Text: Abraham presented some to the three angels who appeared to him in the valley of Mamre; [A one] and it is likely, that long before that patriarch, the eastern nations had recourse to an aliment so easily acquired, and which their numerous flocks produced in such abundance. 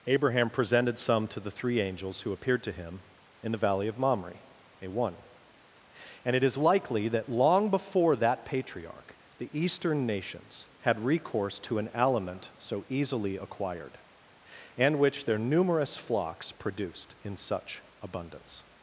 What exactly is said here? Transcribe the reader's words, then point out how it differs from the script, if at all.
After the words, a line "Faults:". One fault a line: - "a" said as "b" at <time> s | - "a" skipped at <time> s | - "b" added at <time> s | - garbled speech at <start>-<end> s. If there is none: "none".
Abraham presented some to the three angels who appeared to him in the valley of Mamre; [A one] and it is likely, that long before that patriarch, the eastern nations had recourse to an aliment so easily acquired, and which their numerous flocks produced in such abundance.
Faults:
none